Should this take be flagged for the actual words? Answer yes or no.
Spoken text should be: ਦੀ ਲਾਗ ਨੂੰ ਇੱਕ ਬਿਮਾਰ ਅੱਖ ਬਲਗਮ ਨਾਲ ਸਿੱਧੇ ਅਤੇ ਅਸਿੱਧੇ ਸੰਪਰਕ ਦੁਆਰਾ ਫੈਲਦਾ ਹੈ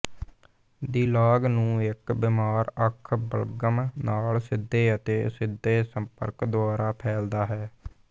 no